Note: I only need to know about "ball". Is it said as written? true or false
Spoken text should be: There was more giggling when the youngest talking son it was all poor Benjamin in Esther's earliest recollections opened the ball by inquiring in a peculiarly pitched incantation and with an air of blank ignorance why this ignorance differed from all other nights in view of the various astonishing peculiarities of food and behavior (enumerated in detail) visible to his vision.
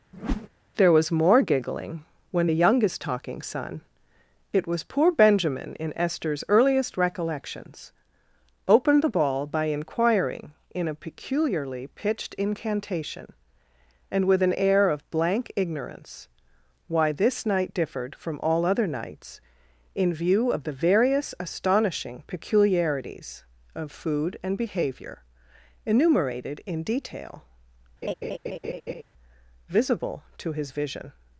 true